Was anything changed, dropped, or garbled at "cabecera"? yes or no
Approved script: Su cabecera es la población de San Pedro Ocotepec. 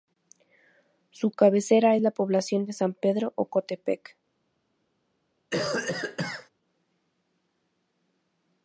no